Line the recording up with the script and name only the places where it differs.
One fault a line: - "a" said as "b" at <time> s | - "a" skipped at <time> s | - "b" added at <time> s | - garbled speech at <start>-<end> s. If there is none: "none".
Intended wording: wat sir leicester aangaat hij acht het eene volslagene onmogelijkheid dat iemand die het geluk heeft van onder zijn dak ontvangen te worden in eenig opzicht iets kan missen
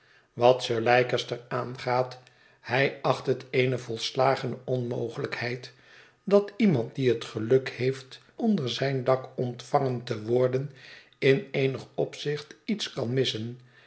- "van" skipped at 8.2 s